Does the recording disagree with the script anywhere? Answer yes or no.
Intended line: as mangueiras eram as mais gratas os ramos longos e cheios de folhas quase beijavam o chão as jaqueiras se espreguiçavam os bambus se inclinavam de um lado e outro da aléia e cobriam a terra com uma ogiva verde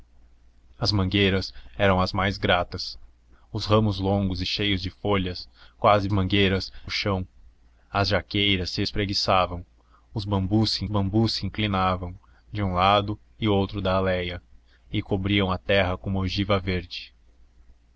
yes